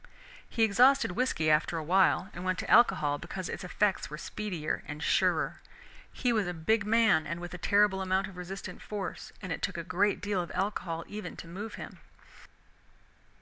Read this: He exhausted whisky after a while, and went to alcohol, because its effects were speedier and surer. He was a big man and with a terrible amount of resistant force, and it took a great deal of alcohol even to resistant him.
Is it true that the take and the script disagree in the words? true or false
true